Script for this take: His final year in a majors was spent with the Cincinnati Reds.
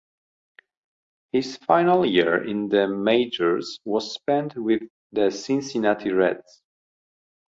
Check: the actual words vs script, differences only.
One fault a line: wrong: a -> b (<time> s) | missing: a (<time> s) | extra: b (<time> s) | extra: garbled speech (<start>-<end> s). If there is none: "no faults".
wrong: a -> the (2.7 s)